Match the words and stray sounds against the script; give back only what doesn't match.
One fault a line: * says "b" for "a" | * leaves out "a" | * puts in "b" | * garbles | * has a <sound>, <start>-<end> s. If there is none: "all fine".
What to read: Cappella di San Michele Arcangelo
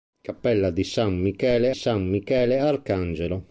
* puts in "San Michele"